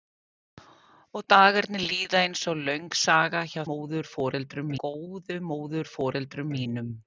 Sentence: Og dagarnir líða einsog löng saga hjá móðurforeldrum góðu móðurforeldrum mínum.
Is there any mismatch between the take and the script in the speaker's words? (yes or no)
no